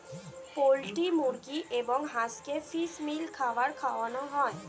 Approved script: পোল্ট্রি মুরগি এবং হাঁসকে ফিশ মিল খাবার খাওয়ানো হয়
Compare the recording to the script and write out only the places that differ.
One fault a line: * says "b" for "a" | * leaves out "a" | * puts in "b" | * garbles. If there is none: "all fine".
all fine